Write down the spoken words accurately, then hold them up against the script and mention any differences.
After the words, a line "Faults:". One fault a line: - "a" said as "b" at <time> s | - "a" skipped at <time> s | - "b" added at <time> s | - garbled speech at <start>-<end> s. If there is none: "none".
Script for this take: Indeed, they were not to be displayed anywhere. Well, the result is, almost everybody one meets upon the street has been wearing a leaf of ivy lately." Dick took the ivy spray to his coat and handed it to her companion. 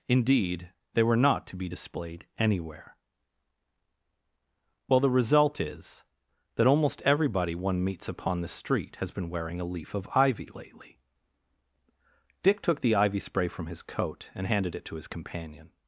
Indeed, they were not to be displayed anywhere. Well, the result is, that almost everybody one meets upon the street has been wearing a leaf of ivy lately." Dick took the ivy spray from his coat and handed it to his companion.
Faults:
- "that" added at 6.5 s
- "to" said as "from" at 13.5 s
- "her" said as "his" at 15.0 s